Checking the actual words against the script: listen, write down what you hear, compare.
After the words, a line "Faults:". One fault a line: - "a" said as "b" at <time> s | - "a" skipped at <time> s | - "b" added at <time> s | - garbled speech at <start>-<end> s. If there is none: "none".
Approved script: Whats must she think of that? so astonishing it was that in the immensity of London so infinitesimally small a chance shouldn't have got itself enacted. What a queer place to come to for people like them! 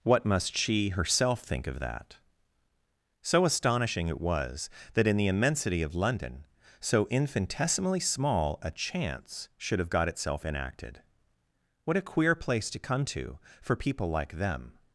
What must she herself think of that? so astonishing it was that in the immensity of London so infinitesimally small a chance should have got itself enacted. What a queer place to come to for people like them!
Faults:
- "Whats" said as "What" at 0.0 s
- "herself" added at 0.9 s
- "shouldn't" said as "should" at 9.6 s